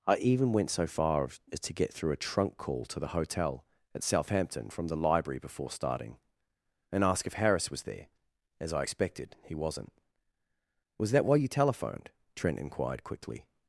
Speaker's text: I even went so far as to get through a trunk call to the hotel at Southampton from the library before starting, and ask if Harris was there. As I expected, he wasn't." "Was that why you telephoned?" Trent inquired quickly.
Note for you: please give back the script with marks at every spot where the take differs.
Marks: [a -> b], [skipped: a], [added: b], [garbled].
I even went so far as to get through a trunk call to the hotel at Southampton from the library before starting, and ask if Harris was there. As I expected, he wasn't." "Was that why you telephoned?" Trent inquired quickly.